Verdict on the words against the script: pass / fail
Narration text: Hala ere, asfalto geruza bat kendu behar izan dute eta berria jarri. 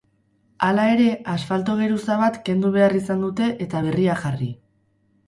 pass